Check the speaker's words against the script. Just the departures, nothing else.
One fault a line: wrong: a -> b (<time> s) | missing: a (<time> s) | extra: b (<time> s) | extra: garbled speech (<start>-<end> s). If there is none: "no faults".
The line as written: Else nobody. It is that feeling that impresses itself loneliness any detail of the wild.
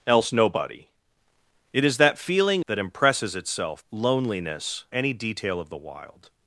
no faults